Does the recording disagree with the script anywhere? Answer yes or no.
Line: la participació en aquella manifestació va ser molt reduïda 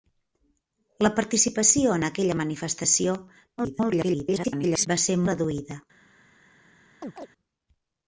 yes